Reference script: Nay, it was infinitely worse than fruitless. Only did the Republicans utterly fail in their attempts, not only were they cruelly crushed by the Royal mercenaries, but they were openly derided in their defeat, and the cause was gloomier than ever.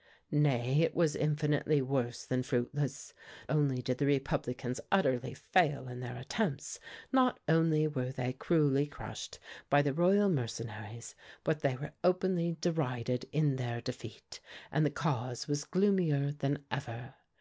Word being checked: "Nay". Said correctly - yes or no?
yes